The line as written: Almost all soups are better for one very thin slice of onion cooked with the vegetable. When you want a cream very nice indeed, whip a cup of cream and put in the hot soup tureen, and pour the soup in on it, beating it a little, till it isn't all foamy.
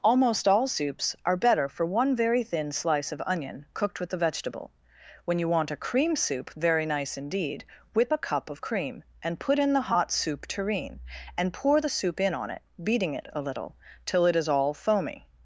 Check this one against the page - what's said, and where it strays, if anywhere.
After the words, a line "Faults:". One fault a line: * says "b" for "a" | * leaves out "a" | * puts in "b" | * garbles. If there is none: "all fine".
Almost all soups are better for one very thin slice of onion cooked with the vegetable. When you want a cream soup very nice indeed, whip a cup of cream and put in the hot soup tureen, and pour the soup in on it, beating it a little, till it is all foamy.
Faults:
* puts in "soup"
* says "is" for "isn't"